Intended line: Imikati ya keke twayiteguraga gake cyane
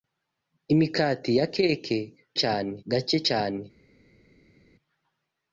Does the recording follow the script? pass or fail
fail